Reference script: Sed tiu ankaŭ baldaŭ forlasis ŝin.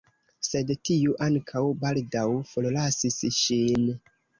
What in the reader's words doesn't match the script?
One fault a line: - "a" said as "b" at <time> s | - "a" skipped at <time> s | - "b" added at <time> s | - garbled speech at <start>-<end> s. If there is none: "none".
none